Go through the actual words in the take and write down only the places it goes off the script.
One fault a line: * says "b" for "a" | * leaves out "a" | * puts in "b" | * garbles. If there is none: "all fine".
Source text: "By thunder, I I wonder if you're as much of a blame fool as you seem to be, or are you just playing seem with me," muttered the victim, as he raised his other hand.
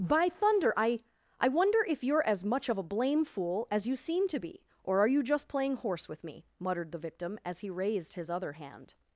* says "horse" for "seem"